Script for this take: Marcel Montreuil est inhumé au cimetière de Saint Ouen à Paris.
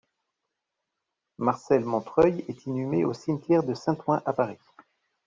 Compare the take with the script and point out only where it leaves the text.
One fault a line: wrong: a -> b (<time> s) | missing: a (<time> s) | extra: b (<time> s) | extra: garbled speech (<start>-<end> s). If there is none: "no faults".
no faults